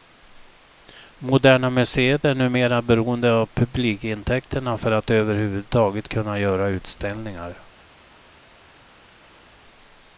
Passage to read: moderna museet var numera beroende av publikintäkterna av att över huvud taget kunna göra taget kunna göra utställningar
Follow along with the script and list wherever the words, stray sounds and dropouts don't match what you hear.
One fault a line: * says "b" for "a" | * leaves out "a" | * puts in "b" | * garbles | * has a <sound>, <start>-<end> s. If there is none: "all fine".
* says "är" for "var"
* says "för" for "av"
* leaves out "taget kunna göra"